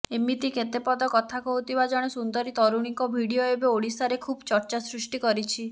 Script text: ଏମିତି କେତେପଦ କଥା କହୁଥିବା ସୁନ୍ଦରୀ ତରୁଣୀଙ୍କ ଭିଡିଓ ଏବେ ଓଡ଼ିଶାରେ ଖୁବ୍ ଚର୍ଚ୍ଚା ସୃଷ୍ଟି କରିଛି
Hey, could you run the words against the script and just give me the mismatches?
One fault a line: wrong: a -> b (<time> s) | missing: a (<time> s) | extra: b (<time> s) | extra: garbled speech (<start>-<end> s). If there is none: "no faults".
extra: ଜଣେ (1.9 s)